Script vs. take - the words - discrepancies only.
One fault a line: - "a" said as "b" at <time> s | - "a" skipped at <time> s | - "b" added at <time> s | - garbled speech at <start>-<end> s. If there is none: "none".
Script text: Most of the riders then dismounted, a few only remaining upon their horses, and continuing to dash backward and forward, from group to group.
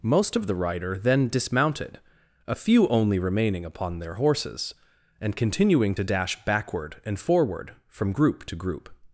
- "riders" said as "rider" at 0.6 s